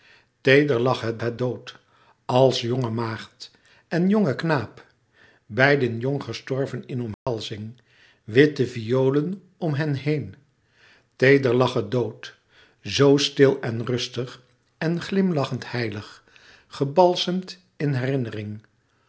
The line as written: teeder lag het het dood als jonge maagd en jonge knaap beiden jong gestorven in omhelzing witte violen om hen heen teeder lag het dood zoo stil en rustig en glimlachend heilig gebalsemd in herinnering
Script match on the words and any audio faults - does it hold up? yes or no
no